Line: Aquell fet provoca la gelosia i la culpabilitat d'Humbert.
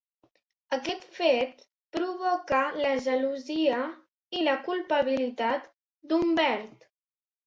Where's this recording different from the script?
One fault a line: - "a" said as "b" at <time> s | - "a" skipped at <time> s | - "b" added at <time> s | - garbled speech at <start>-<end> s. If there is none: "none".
- "Aquell" said as "Aquest" at 0.8 s